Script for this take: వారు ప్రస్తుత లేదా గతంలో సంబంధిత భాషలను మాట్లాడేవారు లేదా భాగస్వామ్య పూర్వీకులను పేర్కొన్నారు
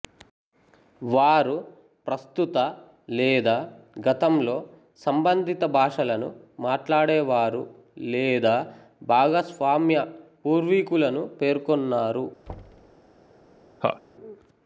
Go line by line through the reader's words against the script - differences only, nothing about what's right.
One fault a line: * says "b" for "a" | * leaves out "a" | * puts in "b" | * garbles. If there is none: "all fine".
all fine